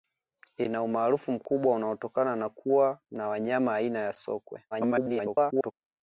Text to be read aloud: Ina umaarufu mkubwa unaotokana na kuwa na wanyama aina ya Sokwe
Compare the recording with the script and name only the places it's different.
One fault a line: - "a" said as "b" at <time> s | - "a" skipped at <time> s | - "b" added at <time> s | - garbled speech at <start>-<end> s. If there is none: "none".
- garbled speech at 4.7-5.7 s